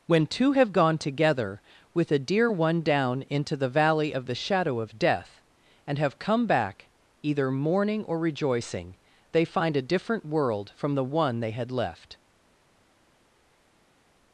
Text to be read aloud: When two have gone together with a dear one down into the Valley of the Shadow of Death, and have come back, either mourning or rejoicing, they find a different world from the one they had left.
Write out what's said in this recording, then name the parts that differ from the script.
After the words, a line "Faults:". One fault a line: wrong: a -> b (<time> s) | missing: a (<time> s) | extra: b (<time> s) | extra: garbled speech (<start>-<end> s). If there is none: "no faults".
When two have gone together with a dear one down into the Valley of the Shadow of Death, and have come back, either mourning or rejoicing, they find a different world from the one they had left.
Faults:
no faults